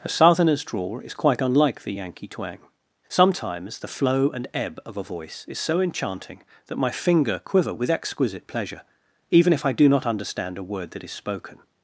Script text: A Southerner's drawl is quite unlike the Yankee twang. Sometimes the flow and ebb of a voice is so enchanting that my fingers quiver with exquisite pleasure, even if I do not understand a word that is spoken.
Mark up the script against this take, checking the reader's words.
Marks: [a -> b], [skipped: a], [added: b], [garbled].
A Southerner's drawl is quite unlike the Yankee twang. Sometimes the flow and ebb of a voice is so enchanting that my [fingers -> finger] quiver with exquisite pleasure, even if I do not understand a word that is spoken.